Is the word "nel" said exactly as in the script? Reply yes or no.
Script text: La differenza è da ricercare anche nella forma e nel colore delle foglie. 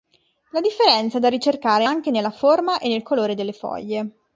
yes